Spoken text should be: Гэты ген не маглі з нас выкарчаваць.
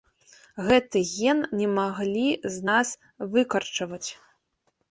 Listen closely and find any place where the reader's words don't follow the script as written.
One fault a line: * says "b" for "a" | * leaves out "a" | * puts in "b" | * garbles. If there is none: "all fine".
all fine